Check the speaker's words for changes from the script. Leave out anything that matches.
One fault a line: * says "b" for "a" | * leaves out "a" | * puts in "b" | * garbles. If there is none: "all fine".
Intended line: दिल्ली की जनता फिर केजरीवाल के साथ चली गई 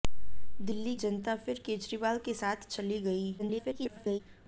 * leaves out "की"
* garbles